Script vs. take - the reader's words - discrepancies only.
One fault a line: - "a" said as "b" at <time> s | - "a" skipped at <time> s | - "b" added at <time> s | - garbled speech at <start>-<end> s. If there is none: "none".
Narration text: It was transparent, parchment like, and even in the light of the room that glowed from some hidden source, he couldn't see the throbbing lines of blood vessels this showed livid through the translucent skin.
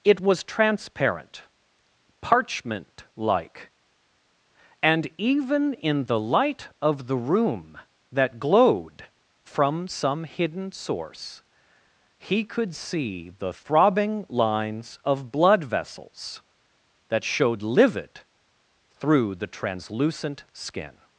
- "couldn't" said as "could" at 12.4 s
- "this" said as "that" at 17.1 s